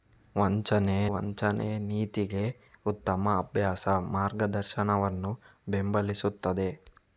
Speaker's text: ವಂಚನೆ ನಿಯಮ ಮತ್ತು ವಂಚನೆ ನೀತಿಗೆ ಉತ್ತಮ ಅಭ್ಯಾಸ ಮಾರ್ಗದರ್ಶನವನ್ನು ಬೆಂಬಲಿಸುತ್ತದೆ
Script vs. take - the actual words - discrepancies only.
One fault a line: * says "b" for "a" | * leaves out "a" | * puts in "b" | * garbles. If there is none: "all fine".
* leaves out "ನಿಯಮ ಮತ್ತು"